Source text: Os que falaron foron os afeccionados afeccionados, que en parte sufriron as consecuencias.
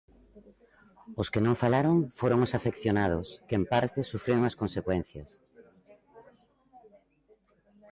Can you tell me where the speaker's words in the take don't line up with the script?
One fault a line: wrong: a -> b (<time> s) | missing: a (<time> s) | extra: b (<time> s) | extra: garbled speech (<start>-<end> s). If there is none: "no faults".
extra: non (1.4 s)
missing: afeccionados (3.3 s)